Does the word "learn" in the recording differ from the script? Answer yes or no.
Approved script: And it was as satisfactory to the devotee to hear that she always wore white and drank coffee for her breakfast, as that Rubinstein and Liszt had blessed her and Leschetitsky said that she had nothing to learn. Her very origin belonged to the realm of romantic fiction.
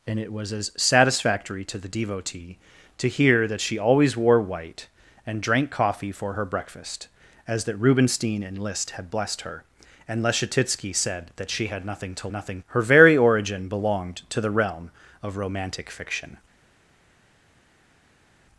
yes